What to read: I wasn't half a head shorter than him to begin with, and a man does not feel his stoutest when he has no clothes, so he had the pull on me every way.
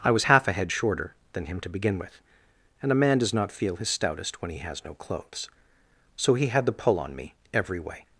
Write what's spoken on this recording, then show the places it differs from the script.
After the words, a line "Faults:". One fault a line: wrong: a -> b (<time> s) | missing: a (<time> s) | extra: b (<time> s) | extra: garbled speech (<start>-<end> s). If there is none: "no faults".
I was half a head shorter than him to begin with, and a man does not feel his stoutest when he has no clothes, so he had the pull on me every way.
Faults:
wrong: wasn't -> was (0.1 s)